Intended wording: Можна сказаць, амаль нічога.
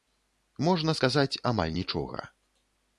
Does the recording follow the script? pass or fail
pass